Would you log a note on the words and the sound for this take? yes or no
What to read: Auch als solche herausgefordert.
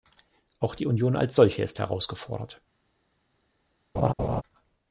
yes